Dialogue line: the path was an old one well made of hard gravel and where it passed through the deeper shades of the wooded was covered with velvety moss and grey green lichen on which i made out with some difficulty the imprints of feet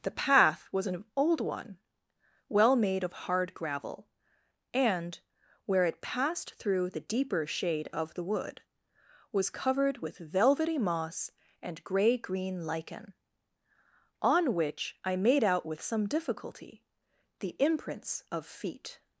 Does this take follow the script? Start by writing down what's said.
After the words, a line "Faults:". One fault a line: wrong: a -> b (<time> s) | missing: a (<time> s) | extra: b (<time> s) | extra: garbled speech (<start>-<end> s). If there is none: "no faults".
the path was an old one well made of hard gravel and where it passed through the deeper shade of the wood was covered with velvety moss and grey green lichen on which i made out with some difficulty the imprints of feet
Faults:
wrong: shades -> shade (7.5 s)
wrong: wooded -> wood (8.2 s)